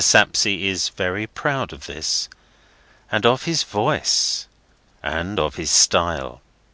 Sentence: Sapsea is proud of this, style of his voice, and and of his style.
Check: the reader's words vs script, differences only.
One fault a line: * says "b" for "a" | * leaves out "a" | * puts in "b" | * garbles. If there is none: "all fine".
* puts in "very"
* says "and" for "style"
* leaves out "and"